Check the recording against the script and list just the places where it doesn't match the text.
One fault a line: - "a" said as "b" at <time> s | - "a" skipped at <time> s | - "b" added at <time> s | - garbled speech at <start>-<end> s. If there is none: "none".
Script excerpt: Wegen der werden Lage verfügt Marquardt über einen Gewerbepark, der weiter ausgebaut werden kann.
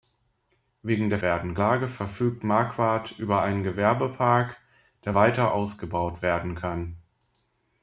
none